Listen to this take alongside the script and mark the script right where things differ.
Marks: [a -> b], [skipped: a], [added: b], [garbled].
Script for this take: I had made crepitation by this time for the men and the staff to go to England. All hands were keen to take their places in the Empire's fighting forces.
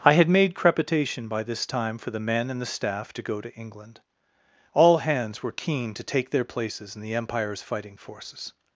I had made crepitation by this time for the men and the staff to go to England. All hands were keen to take their places in the Empire's fighting forces.